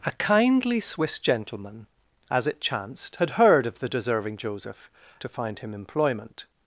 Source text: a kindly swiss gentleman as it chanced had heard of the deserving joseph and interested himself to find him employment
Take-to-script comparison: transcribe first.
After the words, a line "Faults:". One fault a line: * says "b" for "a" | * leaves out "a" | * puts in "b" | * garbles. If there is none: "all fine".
a kindly swiss gentleman as it chanced had heard of the deserving joseph to find him employment
Faults:
* leaves out "and interested himself"